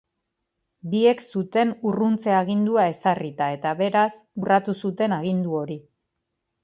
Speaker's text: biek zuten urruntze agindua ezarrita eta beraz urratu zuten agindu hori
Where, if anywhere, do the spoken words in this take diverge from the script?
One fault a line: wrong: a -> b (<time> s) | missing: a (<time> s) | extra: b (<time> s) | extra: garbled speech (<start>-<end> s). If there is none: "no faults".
no faults